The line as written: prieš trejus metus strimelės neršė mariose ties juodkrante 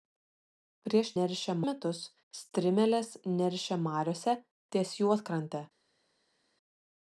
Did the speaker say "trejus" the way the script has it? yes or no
no